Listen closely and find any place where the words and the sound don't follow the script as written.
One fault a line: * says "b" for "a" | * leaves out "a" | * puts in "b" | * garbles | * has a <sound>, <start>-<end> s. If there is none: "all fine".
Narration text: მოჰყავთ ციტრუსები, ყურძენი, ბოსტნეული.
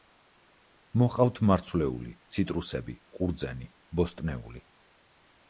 * puts in "მარცვლეული"